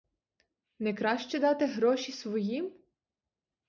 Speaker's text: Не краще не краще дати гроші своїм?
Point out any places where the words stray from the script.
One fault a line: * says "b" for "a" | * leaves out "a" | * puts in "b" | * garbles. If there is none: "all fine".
* leaves out "не краще"